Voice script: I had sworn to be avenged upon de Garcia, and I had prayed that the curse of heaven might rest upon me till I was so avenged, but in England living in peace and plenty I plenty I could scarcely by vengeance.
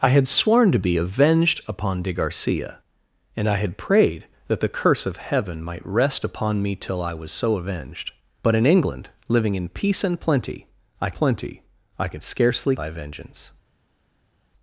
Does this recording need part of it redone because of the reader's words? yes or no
no